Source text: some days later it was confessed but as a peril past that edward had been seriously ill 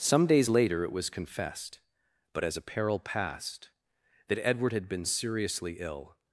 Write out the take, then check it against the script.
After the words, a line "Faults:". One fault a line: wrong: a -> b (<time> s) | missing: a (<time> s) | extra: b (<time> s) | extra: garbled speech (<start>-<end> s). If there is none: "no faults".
some days later it was confessed but as a peril past that edward had been seriously ill
Faults:
no faults